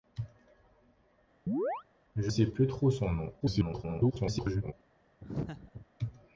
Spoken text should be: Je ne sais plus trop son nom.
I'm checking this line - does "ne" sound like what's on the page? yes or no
no